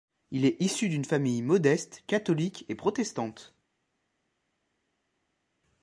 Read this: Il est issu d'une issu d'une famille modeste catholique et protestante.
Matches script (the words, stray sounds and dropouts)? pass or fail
fail